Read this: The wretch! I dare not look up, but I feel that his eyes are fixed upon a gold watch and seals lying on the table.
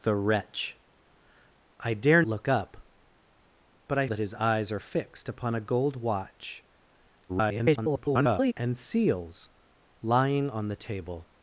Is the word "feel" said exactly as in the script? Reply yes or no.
no